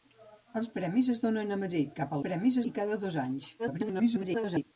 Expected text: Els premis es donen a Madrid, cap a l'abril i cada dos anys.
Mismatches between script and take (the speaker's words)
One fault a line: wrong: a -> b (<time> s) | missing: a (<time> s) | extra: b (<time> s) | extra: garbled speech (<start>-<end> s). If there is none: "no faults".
wrong: l'abril -> premis (2.3 s)
extra: garbled speech (3.6-4.6 s)